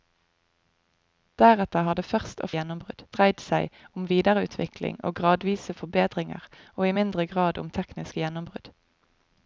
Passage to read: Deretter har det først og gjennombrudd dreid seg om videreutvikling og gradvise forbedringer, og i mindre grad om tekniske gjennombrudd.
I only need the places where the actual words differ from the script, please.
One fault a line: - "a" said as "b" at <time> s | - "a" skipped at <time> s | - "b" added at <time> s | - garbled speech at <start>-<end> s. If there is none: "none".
none